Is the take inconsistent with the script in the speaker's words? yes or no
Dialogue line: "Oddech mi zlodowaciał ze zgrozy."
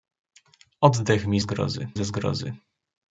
yes